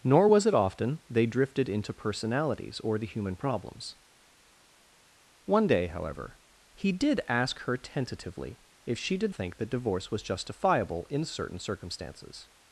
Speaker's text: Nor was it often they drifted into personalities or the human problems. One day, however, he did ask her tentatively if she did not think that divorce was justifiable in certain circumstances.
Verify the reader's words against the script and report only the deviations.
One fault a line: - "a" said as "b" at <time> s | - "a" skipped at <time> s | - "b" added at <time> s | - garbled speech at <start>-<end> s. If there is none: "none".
- "not" skipped at 9.3 s